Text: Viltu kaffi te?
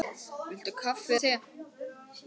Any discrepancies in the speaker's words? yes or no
no